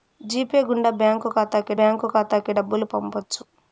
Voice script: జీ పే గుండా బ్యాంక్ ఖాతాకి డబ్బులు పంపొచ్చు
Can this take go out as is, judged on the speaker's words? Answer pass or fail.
fail